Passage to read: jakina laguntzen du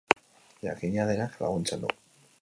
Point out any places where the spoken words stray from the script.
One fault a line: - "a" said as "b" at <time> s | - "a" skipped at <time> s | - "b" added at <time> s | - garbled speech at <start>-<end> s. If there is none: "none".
- "denak" added at 1.1 s